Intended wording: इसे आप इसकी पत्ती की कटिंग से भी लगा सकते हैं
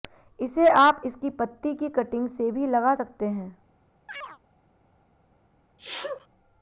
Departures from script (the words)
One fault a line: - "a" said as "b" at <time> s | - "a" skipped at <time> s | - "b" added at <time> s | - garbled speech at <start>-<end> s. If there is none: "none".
none